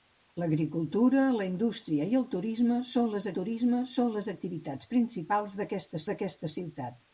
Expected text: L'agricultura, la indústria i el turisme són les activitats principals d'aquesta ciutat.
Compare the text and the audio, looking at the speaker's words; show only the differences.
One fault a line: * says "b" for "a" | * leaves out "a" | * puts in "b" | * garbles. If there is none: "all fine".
* puts in "turisme són les"
* puts in "d'aquesta"